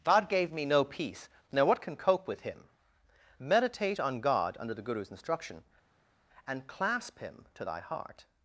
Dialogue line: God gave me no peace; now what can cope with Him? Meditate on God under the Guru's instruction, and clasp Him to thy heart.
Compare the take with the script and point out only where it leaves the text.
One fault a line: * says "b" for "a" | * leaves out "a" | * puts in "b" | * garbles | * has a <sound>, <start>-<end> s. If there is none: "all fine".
all fine